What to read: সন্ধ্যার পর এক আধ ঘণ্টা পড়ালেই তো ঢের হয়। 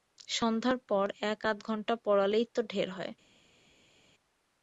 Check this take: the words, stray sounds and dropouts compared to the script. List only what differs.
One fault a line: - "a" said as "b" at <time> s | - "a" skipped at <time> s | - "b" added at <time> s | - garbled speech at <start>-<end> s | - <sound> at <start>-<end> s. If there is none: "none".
none